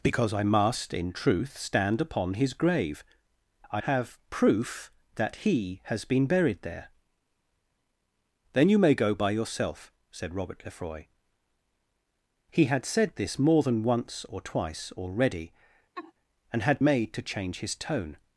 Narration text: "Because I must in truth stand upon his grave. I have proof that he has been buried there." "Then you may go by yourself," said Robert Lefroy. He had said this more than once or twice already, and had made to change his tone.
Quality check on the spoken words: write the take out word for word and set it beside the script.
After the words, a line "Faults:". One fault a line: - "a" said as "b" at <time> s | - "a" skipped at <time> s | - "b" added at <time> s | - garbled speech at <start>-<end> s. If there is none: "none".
"Because I must in truth stand upon his grave. I have proof that he has been buried there." "Then you may go by yourself," said Robert Lefroy. He had said this more than once or twice already, and had made to change his tone.
Faults:
none